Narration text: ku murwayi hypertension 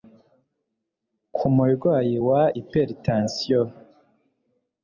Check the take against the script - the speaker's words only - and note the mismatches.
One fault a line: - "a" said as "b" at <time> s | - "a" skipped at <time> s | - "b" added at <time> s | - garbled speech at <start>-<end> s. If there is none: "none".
- "wa" added at 2.3 s